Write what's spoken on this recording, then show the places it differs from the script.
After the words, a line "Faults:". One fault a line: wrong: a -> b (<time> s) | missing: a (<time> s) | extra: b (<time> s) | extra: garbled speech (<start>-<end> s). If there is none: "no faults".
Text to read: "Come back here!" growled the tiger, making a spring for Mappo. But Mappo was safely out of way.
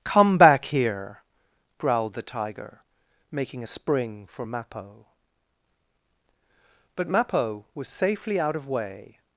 "Come back here!" growled the tiger, making a spring for Mappo. But Mappo was safely out of way.
Faults:
no faults